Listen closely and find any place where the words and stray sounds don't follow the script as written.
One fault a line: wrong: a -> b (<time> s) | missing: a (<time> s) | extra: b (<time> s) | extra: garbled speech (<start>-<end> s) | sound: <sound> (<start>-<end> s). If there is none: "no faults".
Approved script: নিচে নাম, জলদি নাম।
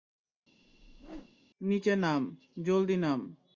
sound: whoosh (0.6-1.4 s)